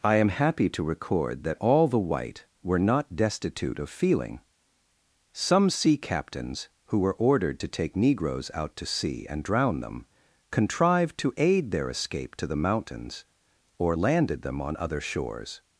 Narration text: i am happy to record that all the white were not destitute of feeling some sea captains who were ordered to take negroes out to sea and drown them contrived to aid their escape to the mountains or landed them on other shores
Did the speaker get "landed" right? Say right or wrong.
right